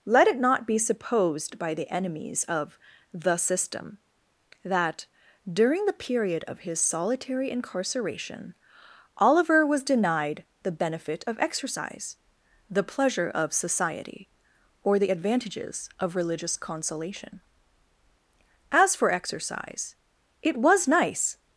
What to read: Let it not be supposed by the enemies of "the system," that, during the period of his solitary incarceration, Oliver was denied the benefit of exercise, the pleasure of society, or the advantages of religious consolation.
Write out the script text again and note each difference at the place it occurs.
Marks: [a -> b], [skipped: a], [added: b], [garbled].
Let it not be supposed by the enemies of "the system," that, during the period of his solitary incarceration, Oliver was denied the benefit of exercise, the pleasure of society, or the advantages of religious consolation. [added: As for exercise it was nice]